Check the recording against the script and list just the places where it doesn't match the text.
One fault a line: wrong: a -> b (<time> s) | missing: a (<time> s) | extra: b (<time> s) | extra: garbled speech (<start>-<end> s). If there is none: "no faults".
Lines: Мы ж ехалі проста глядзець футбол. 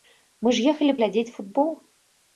missing: проста (0.9 s)